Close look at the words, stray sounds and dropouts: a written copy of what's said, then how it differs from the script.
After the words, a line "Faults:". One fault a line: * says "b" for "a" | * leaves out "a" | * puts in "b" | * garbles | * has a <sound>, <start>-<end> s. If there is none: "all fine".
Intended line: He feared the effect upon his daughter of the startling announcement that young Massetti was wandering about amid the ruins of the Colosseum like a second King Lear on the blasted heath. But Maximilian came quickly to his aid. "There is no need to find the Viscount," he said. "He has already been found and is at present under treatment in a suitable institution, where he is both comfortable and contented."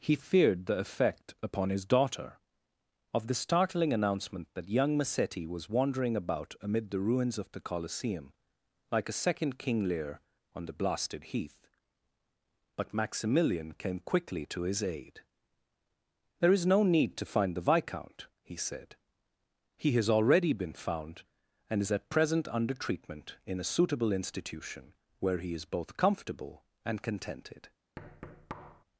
He feared the effect upon his daughter of the startling announcement that young Massetti was wandering about amid the ruins of the Colosseum like a second King Lear on the blasted heath. But Maximilian came quickly to his aid. "There is no need to find the Viscount," he said. "He has already been found and is at present under treatment in a suitable institution, where he is both comfortable and contented."
Faults:
* has a thud, 28.0-28.8 s